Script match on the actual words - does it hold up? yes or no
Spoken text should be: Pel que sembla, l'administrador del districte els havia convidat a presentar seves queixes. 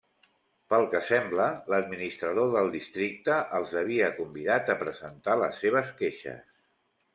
no